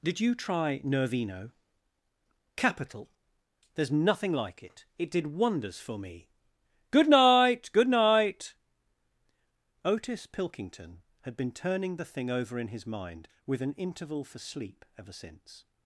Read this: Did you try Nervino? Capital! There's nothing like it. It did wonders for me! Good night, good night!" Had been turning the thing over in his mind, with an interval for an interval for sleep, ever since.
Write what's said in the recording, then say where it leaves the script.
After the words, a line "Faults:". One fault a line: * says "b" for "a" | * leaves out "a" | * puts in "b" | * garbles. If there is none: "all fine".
Did you try Nervino? Capital! There's nothing like it. It did wonders for me! Good night, good night!" Otis Pilkington had been turning the thing over in his mind, with an interval for sleep, ever since.
Faults:
* puts in "Otis Pilkington"
* leaves out "an interval for"